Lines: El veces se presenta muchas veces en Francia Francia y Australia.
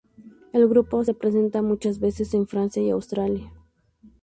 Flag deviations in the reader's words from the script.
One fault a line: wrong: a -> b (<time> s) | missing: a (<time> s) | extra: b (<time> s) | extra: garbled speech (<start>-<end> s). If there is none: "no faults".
wrong: veces -> grupo (0.7 s)
missing: Francia (2.8 s)